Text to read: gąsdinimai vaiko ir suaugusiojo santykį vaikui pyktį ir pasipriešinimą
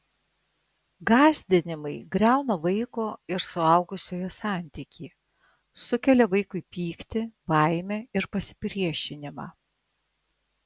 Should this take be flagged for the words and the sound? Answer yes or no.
yes